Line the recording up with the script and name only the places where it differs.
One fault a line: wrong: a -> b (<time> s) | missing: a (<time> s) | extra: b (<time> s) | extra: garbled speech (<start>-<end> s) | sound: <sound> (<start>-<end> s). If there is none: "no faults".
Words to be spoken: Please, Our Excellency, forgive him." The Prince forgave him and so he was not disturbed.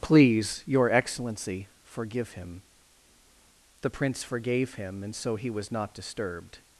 wrong: Our -> Your (0.7 s)